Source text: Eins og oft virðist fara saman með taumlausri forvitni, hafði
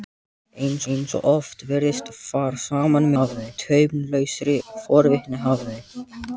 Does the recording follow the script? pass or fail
fail